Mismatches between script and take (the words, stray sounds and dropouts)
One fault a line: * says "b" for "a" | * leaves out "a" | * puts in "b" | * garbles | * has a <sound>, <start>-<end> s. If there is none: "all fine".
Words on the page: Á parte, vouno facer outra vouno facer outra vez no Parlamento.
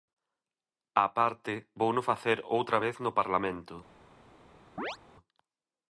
* leaves out "vouno facer outra"
* has a chirp, 4.8-5.0 s